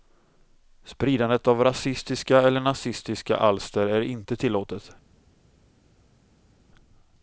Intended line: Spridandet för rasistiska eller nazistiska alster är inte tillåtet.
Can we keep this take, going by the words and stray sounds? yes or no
no